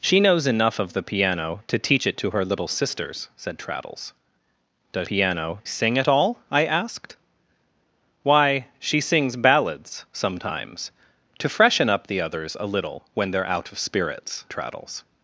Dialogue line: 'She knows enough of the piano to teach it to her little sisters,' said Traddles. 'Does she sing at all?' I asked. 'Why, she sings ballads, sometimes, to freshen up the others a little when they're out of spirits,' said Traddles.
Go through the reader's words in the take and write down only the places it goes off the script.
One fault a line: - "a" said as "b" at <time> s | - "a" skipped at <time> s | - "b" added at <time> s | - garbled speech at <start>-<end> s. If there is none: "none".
- "she" said as "piano" at 5.0 s
- "said" skipped at 14.5 s